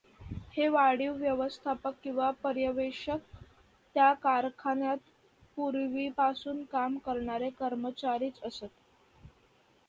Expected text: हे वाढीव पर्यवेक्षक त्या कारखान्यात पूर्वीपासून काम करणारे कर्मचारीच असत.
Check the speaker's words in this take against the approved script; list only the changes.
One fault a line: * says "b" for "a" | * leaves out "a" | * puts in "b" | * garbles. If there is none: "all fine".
* puts in "व्यवस्थापक किंवा"